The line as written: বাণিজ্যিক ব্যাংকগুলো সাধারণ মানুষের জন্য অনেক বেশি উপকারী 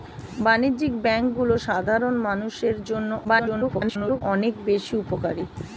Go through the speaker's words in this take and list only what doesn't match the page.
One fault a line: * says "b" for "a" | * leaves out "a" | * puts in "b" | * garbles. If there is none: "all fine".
* garbles